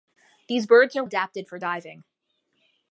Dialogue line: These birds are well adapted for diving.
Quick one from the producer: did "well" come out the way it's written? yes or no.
no